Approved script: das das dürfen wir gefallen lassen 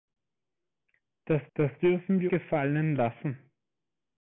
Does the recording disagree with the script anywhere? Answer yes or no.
no